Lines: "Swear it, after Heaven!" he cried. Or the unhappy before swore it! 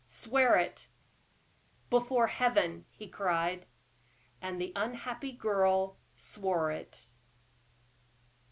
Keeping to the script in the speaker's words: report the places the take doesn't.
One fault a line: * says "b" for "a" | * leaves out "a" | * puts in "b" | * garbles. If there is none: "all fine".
* says "before" for "after"
* says "And" for "Or"
* says "girl" for "before"